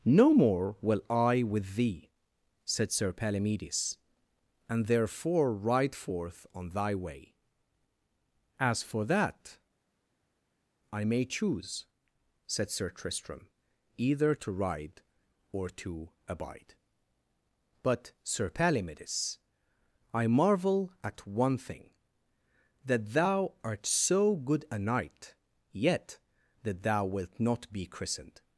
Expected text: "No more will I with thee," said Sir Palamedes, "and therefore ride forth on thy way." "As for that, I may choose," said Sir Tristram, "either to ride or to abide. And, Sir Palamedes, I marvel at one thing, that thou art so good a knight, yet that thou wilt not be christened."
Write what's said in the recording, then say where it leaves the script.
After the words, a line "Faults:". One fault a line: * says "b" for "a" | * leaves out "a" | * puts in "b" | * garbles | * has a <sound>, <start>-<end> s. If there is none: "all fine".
"No more will I with thee," said Sir Palamedes, "and therefore ride forth on thy way." "As for that, I may choose," said Sir Tristram, "either to ride or to abide. But, Sir Palamedes, I marvel at one thing, that thou art so good a knight, yet that thou wilt not be christened."
Faults:
* says "But" for "And"